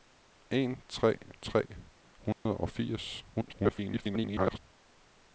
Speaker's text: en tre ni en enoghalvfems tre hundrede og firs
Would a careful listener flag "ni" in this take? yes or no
yes